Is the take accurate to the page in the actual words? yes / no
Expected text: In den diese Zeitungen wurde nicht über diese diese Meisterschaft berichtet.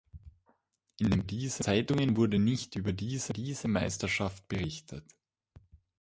yes